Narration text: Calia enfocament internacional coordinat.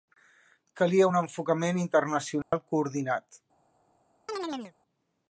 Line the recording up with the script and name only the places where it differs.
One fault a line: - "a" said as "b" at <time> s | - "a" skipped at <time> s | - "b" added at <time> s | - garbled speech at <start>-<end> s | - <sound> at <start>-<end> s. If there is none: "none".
- "un" added at 1.1 s
- dropout at 2.4-2.5 s
- chirp at 4.3-4.7 s